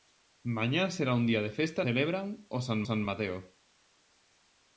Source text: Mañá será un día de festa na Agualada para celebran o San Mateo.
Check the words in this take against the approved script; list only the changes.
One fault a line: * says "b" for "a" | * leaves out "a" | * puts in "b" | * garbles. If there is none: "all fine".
* leaves out "na Agualada para"
* puts in "San"